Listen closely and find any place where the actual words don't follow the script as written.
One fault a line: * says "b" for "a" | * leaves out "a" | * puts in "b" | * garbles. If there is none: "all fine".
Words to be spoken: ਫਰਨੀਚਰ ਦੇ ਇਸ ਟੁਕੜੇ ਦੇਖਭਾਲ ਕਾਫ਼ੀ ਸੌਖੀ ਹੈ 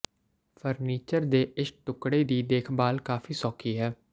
* puts in "ਦੀ"